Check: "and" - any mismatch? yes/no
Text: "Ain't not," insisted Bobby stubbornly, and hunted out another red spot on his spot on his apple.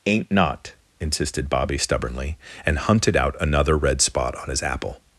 no